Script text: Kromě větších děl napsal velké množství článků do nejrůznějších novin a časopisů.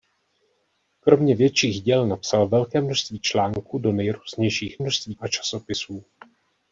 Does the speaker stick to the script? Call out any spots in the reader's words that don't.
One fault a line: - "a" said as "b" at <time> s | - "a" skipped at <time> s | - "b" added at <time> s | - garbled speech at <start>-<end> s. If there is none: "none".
- "novin" said as "množství" at 4.8 s